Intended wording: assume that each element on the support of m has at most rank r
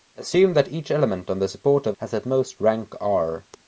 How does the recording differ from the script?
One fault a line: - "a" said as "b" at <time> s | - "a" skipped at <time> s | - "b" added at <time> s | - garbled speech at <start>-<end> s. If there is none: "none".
- "m" skipped at 1.9 s